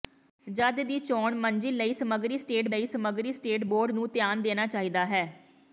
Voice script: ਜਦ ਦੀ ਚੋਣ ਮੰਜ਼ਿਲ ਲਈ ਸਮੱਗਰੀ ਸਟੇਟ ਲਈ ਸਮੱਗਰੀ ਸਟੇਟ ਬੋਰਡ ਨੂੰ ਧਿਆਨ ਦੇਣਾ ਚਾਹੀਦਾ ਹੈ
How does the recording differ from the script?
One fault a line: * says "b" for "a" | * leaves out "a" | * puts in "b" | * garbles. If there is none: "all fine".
all fine